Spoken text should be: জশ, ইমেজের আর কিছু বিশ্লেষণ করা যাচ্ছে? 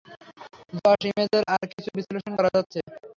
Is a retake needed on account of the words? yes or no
no